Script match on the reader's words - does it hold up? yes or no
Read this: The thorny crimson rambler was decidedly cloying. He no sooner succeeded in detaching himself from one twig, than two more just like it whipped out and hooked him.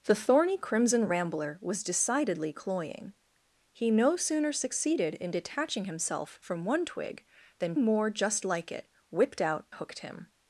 no